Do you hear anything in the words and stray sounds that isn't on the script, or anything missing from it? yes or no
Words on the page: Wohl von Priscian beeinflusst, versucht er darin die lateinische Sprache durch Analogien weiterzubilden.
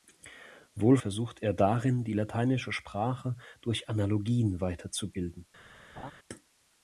yes